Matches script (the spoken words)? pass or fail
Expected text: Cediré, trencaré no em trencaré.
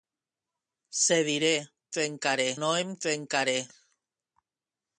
pass